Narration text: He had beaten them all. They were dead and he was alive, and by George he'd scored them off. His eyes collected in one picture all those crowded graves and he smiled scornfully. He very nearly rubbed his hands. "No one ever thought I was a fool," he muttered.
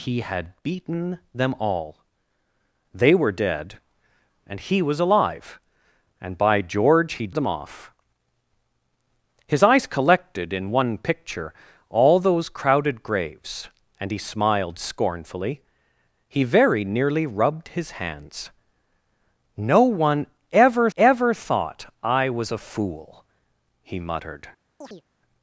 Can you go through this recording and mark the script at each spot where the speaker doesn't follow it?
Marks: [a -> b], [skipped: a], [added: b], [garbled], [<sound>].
He had beaten them all. They were dead and he was alive, and by George he'd [skipped: scored] them off. His eyes collected in one picture all those crowded graves and he smiled scornfully. He very nearly rubbed his hands. "No one ever [added: ever] thought I was a fool," he muttered. [chirp]